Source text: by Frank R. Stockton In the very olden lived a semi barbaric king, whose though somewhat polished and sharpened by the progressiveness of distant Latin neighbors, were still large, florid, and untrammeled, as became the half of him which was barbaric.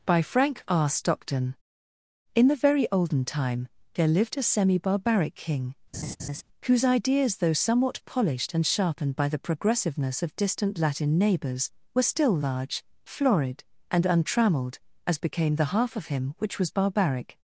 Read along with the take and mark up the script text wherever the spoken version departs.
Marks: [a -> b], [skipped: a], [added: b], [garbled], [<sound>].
by Frank R. Stockton In the very olden [added: time there] lived a semi barbaric king, [laugh] whose [added: ideas] though somewhat polished and sharpened by the progressiveness of distant Latin neighbors, were still large, florid, and untrammeled, as became the half of him which was barbaric.